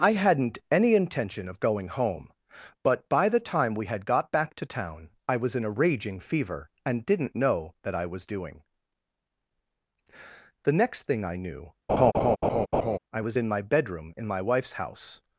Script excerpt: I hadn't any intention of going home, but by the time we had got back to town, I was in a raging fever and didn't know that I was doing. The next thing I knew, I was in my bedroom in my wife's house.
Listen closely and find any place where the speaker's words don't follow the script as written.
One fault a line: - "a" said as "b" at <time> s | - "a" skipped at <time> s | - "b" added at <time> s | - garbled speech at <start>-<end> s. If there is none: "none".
none